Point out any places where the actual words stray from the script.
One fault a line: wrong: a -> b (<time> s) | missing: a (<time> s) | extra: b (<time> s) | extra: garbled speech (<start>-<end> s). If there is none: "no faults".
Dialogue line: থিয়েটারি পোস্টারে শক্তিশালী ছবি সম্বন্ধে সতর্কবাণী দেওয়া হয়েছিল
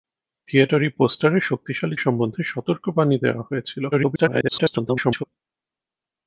missing: ছবি (1.9 s)
extra: garbled speech (3.9-5.2 s)